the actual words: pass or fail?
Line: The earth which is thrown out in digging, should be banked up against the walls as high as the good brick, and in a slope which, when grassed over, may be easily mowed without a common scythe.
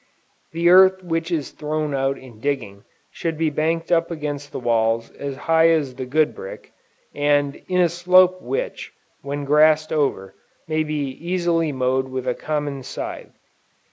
fail